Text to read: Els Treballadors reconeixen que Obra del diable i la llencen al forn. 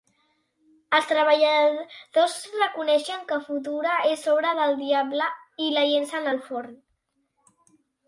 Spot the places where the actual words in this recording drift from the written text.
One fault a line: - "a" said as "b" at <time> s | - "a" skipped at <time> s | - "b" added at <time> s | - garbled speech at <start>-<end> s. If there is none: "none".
- "Futura és" added at 3.5 s